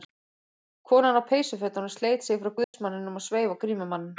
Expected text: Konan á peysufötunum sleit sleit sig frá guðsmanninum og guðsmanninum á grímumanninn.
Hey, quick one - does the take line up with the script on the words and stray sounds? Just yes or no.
no